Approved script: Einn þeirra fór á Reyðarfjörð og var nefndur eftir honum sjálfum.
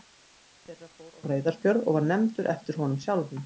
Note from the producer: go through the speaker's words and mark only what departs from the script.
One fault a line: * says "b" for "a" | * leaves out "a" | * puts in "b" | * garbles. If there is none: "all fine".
all fine